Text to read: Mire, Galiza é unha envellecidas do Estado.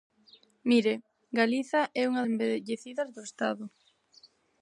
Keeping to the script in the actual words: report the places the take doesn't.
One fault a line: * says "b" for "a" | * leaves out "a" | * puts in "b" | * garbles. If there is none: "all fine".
all fine